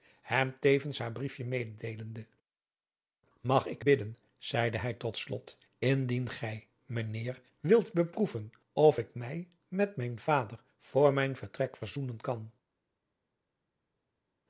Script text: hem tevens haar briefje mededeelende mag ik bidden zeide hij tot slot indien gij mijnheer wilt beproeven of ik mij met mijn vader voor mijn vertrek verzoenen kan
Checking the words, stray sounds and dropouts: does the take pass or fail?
pass